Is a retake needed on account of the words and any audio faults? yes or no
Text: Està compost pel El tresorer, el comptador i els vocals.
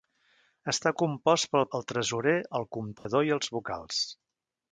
yes